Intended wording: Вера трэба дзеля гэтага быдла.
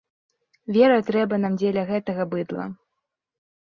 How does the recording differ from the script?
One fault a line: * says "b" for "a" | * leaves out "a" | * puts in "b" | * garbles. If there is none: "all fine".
* puts in "нам"